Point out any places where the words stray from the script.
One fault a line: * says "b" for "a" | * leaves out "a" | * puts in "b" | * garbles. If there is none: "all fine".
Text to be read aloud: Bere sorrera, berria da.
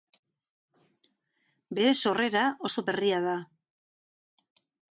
* puts in "oso"